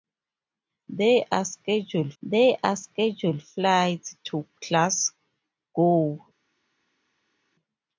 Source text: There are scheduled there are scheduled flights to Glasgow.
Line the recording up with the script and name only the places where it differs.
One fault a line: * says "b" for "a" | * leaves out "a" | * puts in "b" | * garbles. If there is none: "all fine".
all fine